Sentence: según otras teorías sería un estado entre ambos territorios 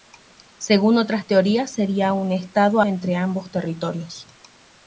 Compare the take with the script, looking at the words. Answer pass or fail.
pass